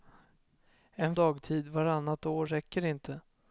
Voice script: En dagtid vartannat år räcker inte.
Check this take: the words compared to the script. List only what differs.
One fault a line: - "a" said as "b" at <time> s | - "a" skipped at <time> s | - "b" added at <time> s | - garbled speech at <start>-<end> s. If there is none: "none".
none